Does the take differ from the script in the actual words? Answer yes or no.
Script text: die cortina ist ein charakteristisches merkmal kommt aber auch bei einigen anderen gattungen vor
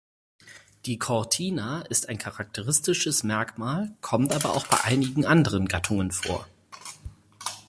no